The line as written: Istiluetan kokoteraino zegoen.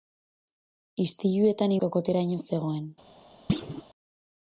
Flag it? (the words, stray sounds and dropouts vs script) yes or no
yes